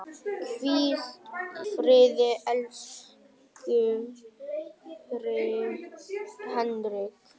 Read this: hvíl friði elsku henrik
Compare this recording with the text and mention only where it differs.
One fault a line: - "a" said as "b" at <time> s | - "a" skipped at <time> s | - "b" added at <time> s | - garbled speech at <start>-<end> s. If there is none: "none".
none